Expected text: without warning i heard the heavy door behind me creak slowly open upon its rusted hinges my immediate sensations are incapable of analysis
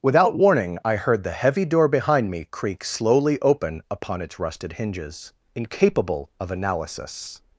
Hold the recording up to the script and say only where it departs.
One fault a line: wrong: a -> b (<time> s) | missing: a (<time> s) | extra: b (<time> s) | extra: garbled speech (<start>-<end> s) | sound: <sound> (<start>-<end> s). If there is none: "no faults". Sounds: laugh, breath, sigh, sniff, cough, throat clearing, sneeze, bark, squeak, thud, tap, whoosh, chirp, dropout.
missing: my immediate sensations are (5.3 s)